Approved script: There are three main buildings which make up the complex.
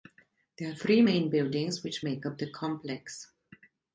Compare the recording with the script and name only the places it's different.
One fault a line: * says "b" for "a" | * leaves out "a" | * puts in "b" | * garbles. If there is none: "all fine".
all fine